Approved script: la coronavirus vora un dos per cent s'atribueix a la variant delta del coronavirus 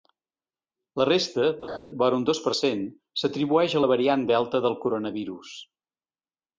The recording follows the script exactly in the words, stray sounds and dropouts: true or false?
false